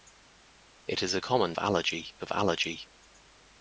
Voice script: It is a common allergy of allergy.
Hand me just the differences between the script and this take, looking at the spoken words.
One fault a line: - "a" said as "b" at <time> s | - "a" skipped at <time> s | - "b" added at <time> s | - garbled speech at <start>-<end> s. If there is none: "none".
none